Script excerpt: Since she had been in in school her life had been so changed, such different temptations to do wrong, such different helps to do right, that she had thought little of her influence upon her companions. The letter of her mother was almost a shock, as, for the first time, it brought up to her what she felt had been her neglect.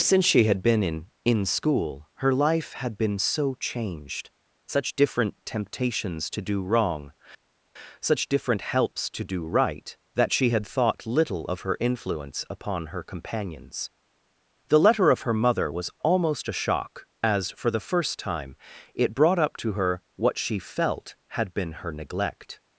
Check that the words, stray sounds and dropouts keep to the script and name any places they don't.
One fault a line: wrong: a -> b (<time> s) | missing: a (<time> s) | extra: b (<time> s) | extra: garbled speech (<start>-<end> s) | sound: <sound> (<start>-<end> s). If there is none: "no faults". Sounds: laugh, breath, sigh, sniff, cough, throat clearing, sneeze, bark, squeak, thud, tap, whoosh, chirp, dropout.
no faults